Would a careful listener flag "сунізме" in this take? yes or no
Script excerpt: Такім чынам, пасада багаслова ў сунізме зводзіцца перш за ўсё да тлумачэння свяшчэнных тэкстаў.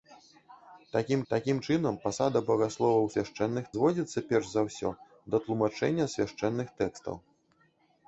yes